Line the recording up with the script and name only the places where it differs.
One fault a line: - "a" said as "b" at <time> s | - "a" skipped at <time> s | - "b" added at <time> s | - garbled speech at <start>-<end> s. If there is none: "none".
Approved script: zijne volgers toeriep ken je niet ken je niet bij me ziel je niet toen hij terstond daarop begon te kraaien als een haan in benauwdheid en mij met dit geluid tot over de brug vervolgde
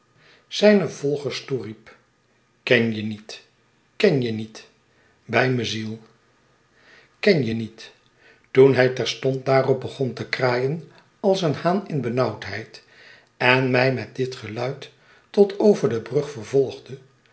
- "ken" added at 7.2 s